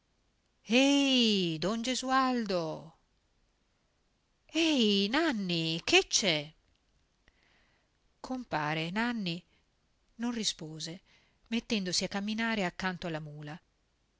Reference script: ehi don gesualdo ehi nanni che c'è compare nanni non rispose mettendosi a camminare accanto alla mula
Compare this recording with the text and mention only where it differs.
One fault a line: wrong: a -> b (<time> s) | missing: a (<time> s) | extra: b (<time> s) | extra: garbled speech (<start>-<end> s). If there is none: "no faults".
no faults